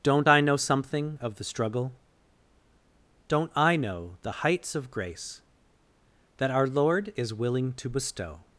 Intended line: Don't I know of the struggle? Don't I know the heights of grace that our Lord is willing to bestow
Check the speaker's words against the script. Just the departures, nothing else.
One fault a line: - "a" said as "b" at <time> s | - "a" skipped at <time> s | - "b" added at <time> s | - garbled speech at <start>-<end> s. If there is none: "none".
- "something" added at 0.6 s